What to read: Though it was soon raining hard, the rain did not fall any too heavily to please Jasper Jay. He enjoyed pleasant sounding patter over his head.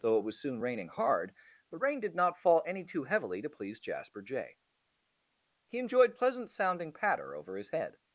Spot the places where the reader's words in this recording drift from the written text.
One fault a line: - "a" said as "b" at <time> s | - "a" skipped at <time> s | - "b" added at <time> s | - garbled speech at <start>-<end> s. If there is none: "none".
none